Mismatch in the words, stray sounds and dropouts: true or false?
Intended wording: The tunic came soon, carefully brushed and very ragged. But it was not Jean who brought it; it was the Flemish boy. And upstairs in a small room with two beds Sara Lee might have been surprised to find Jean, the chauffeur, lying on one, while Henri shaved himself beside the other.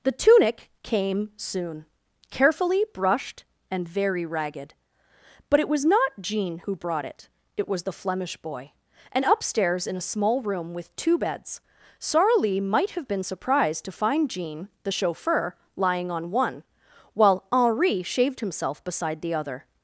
false